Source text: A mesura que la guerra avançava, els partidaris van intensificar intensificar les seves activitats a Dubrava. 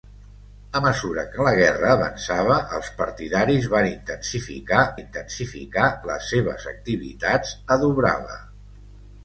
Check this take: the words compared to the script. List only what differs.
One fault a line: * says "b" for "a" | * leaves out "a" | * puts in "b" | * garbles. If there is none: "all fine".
all fine